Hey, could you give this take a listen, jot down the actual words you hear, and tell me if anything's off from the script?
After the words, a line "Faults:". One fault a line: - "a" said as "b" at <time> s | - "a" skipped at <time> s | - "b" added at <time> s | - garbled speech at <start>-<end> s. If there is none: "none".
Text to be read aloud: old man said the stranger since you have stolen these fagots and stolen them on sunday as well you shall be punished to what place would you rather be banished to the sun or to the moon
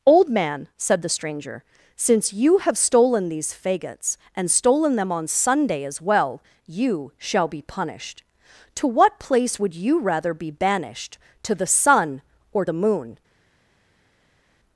old man said the stranger since you have stolen these fagots and stolen them on sunday as well you shall be punished to what place would you rather be banished to the sun or the moon
Faults:
- "to" skipped at 12.6 s